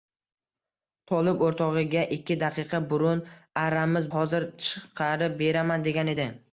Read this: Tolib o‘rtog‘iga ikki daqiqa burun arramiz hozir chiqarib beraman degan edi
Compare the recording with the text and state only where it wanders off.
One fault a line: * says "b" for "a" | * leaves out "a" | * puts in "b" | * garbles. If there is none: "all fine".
all fine